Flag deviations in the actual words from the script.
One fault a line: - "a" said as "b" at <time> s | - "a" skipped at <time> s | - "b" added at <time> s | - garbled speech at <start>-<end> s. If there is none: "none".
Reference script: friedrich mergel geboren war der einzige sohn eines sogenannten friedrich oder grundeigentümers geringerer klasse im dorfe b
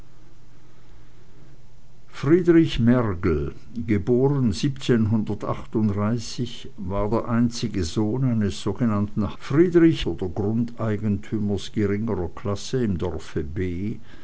none